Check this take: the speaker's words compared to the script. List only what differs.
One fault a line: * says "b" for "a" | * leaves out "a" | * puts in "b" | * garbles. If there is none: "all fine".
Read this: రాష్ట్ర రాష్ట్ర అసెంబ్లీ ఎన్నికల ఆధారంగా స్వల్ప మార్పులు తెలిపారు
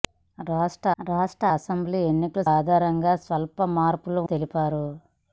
all fine